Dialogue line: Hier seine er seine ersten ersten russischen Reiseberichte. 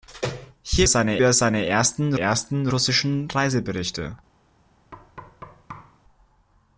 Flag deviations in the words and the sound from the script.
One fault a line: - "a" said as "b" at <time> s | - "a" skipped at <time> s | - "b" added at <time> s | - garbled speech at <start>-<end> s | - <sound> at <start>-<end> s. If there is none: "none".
- thud at 4.9-6.0 s